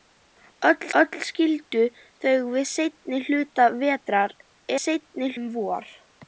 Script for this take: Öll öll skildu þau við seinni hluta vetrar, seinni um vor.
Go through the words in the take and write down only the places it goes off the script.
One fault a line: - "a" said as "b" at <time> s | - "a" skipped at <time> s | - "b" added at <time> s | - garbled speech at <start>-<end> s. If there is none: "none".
none